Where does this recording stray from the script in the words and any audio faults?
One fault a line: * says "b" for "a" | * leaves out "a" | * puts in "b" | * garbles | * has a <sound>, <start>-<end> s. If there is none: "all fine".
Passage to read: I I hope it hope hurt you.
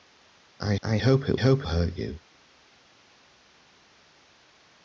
all fine